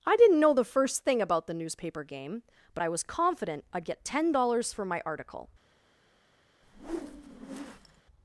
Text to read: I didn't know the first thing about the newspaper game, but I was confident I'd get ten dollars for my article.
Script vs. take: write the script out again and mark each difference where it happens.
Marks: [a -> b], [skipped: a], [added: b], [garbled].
I didn't know the first thing about the newspaper game, but I was confident I'd get ten dollars for my article.